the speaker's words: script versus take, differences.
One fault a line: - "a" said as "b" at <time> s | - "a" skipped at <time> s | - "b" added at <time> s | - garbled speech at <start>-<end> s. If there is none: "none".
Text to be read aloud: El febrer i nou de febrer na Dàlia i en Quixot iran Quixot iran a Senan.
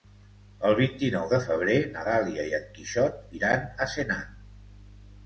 - "febrer" said as "vint" at 0.8 s
- "Quixot iran" skipped at 3.7 s